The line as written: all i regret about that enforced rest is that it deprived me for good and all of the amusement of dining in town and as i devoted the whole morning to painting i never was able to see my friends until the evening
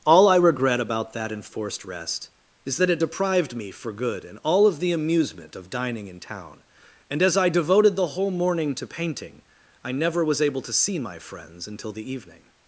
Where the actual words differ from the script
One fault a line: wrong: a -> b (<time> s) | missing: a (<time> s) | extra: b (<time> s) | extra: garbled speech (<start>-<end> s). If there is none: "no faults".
no faults